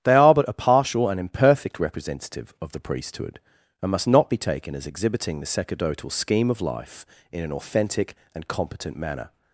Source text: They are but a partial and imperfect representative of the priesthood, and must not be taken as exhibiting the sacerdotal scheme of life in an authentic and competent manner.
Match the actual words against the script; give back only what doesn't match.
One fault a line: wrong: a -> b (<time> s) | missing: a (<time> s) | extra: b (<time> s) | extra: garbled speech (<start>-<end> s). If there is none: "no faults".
no faults